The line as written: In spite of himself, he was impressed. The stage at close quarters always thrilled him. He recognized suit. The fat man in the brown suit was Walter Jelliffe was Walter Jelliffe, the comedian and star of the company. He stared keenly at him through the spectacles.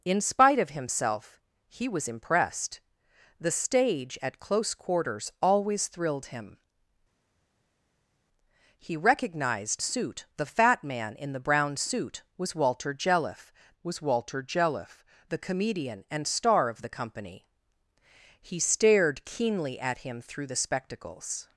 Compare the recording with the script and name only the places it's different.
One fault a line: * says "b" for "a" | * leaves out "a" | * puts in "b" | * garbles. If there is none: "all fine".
all fine